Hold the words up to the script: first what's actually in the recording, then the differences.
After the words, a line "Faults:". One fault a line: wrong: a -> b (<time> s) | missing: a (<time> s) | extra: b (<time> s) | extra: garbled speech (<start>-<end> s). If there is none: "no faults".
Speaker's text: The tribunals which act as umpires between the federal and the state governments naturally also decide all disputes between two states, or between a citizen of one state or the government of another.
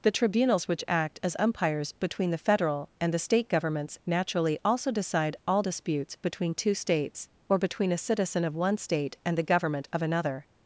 The tribunals which act as umpires between the federal and the state governments naturally also decide all disputes between two states, or between a citizen of one state and the government of another.
Faults:
wrong: or -> and (9.2 s)